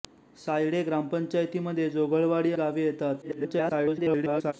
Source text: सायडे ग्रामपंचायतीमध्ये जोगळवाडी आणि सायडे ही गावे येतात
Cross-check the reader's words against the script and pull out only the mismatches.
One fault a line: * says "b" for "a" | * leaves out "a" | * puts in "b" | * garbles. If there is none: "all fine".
* leaves out "आणि सायडे ही"
* garbles